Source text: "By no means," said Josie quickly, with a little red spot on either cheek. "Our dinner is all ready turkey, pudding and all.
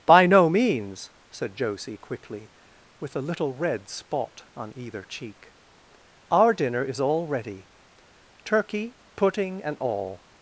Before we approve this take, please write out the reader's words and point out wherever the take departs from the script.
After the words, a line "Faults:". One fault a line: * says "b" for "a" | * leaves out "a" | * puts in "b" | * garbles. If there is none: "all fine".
"By no means," said Josie quickly, with a little red spot on either cheek. "Our dinner is all ready turkey, pudding and all.
Faults:
all fine